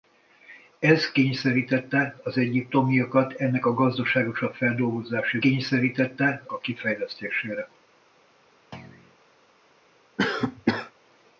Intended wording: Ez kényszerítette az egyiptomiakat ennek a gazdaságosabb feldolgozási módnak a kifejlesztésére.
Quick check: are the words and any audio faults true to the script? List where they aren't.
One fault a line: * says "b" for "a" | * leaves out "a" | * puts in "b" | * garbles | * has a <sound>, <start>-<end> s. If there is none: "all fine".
* says "kényszerítette" for "módnak"
* has a thud, 8.7-9.2 s
* has a cough, 10.2-10.9 s